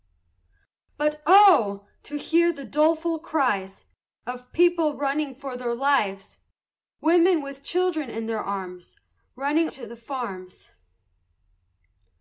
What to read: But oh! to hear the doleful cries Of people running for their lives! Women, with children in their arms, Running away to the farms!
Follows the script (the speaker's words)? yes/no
no